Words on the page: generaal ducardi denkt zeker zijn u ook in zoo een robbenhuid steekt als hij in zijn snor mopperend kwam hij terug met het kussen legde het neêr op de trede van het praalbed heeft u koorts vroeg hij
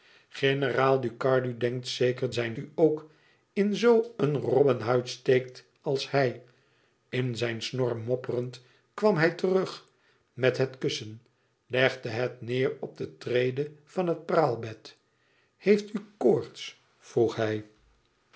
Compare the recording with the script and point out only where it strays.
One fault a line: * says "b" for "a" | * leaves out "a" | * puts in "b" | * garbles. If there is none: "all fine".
all fine